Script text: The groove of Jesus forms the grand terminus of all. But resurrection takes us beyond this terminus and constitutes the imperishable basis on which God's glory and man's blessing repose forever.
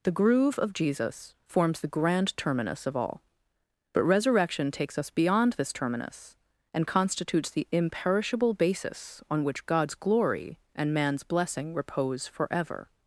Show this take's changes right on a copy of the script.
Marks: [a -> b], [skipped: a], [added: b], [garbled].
The groove of Jesus forms the grand terminus of all. But resurrection takes us beyond this terminus and constitutes the imperishable basis on which God's glory and man's blessing repose forever.